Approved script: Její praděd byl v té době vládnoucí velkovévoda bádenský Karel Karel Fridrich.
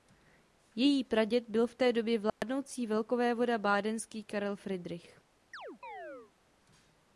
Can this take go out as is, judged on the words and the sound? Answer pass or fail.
fail